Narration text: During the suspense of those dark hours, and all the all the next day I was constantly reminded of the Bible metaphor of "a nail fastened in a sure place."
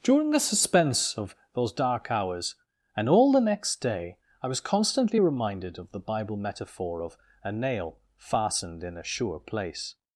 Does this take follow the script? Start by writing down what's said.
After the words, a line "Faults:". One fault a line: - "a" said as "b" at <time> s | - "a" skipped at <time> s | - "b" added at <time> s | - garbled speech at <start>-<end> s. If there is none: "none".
During the suspense of those dark hours, and all the next day I was constantly reminded of the Bible metaphor of "a nail fastened in a sure place."
Faults:
- "all the" skipped at 3.4 s